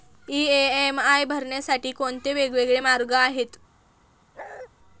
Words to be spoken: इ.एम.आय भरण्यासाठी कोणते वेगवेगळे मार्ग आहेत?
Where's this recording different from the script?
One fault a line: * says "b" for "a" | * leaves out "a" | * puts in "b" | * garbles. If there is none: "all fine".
all fine